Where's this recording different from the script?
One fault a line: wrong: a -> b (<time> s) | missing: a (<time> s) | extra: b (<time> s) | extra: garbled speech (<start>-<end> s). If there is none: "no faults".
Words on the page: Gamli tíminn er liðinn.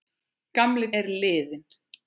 missing: tíminn (0.9 s)